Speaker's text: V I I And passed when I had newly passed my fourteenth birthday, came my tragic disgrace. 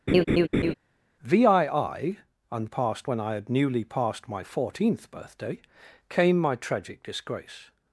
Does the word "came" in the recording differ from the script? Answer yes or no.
no